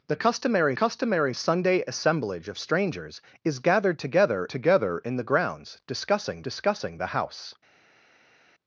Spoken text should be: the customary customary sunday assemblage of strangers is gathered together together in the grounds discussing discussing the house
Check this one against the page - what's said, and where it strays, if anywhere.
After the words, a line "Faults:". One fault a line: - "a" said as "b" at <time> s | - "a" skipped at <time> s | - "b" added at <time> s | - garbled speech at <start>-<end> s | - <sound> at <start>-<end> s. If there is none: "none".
the customary customary sunday assemblage of strangers is gathered together together in the grounds discussing discussing the house
Faults:
none